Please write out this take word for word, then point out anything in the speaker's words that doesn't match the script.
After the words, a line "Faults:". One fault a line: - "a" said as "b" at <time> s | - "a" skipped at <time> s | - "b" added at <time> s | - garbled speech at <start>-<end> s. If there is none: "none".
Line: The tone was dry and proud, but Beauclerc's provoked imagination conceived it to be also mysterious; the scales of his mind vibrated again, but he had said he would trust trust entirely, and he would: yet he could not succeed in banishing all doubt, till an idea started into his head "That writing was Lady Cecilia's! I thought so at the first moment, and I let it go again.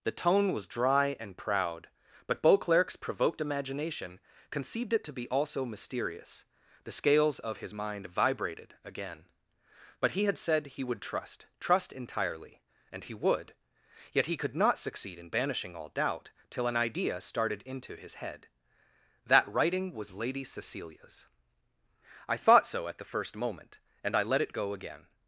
The tone was dry and proud, but Beauclerc's provoked imagination conceived it to be also mysterious; the scales of his mind vibrated again, but he had said he would trust trust entirely, and he would: yet he could not succeed in banishing all doubt, till an idea started into his head "That writing was Lady Cecilia's! I thought so at the first moment, and I let it go again.
Faults:
none